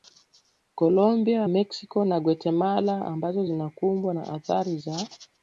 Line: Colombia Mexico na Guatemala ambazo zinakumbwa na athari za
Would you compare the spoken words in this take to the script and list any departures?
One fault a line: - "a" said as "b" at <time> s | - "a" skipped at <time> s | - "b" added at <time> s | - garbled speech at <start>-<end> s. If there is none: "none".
none